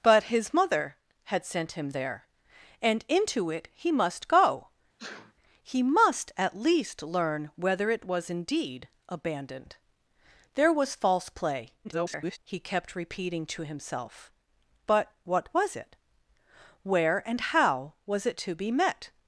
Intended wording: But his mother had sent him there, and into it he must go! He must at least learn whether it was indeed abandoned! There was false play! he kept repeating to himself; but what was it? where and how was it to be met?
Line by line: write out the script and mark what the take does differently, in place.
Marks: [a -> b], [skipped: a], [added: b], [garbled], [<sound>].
But his mother had sent him there, and into it he must go! [sneeze] He must at least learn whether it was indeed abandoned! There was false play! [garbled] he kept repeating to himself; but what was it? where and how was it to be met?